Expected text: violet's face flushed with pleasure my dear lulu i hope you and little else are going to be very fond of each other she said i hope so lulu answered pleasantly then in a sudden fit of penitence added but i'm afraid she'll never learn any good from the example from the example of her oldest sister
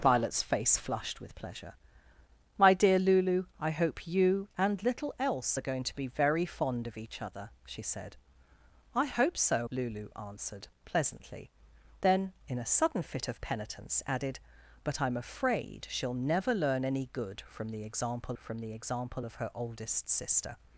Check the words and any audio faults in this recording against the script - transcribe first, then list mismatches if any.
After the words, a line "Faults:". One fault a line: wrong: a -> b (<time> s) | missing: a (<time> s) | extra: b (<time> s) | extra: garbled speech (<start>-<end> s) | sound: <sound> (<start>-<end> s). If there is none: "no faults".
violet's face flushed with pleasure my dear lulu i hope you and little else are going to be very fond of each other she said i hope so lulu answered pleasantly then in a sudden fit of penitence added but i'm afraid she'll never learn any good from the example from the example of her oldest sister
Faults:
no faults